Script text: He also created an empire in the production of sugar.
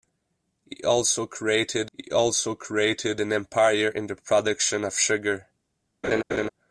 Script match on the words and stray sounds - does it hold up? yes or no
no